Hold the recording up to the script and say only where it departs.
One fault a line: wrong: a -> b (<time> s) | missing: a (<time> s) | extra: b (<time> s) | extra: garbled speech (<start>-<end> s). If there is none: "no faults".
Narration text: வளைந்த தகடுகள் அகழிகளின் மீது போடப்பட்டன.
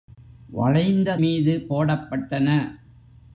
missing: தகடுகள் அகழிகளின் (1.2 s)